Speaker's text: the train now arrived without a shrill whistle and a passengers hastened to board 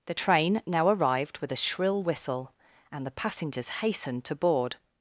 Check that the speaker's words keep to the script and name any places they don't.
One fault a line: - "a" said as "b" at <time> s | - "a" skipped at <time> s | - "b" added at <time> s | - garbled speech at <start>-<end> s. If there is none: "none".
- "without" said as "with" at 1.4 s
- "a" said as "the" at 3.0 s